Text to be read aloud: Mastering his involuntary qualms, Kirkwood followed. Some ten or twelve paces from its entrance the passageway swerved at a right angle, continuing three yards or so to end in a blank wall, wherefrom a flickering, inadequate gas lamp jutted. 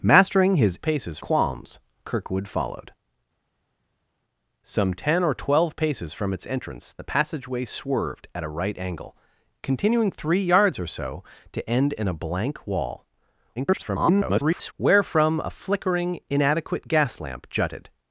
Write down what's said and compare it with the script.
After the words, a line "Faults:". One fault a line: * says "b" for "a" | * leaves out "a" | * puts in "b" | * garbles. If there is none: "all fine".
Mastering his paces qualms, Kirkwood followed. Some ten or twelve paces from its entrance the passageway swerved at a right angle, continuing three yards or so to end in a blank wall, [garbled] wherefrom a flickering, inadequate gas lamp jutted.
Faults:
* says "paces" for "involuntary"
* garbles